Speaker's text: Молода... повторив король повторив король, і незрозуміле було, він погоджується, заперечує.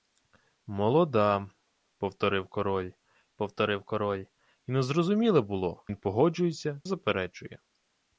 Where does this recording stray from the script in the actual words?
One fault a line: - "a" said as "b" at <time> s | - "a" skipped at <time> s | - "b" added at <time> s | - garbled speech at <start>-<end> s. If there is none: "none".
none